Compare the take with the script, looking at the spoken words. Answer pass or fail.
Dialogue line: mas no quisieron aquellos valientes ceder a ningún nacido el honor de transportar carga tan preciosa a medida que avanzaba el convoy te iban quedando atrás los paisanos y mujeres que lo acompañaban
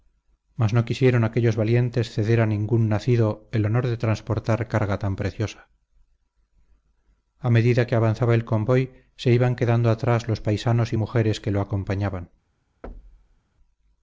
fail